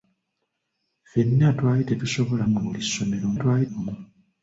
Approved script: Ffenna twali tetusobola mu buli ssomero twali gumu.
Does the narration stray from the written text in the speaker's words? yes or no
no